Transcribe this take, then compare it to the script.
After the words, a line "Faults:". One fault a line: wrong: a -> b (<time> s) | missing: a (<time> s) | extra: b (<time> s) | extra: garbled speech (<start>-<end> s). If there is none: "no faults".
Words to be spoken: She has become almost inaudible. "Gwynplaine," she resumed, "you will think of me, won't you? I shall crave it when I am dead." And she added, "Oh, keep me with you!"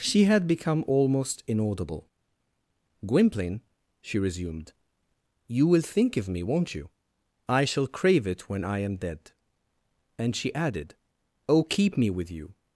She had become almost inaudible. "Gwynplaine," she resumed, "you will think of me, won't you? I shall crave it when I am dead." And she added, "Oh, keep me with you!"
Faults:
wrong: has -> had (0.2 s)